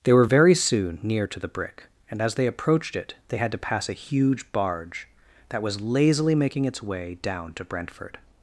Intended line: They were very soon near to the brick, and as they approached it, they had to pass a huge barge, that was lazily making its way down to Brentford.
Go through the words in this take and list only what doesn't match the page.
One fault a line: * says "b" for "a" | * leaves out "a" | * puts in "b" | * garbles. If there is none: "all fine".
all fine